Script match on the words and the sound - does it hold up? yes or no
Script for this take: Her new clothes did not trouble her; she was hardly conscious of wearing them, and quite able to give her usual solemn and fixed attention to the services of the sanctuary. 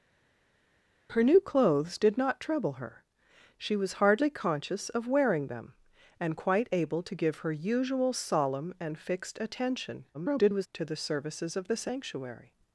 no